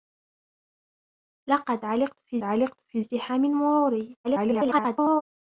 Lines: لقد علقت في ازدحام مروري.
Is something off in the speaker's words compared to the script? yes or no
yes